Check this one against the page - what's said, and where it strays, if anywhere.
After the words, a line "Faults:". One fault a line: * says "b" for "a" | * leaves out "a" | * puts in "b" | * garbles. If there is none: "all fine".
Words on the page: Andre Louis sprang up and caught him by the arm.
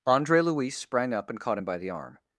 Andre Louis sprang up and caught him by the arm.
Faults:
all fine